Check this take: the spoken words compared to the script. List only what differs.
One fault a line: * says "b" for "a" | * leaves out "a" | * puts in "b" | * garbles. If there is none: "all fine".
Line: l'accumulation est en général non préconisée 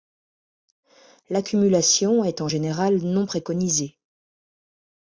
all fine